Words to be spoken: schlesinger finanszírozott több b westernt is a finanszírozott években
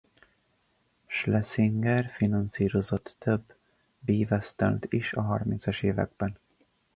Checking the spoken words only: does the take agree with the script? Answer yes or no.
no